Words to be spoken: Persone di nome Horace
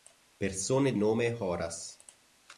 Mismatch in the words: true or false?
true